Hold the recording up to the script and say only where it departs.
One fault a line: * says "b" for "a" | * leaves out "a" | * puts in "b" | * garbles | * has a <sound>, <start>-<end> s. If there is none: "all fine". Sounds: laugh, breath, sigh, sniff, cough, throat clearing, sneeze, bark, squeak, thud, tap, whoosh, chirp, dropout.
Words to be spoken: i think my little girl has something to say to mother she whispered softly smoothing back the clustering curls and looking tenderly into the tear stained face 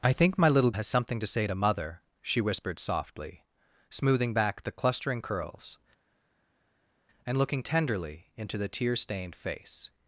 * leaves out "girl"